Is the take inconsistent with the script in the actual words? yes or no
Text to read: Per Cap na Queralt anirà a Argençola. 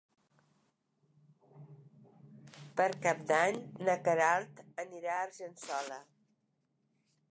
yes